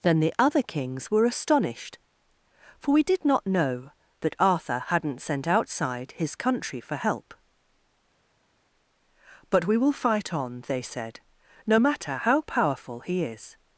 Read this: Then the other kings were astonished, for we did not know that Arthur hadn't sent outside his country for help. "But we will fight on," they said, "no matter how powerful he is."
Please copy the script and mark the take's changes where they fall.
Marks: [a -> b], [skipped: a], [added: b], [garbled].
Then the other kings were astonished, for we did not know that Arthur hadn't sent outside his country for help. "But we will fight on," they said, "no matter how powerful he is."